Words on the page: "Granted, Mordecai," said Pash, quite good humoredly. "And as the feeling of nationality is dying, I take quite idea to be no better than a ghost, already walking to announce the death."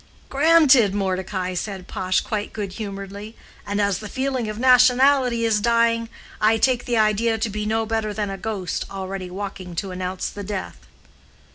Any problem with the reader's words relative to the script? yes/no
yes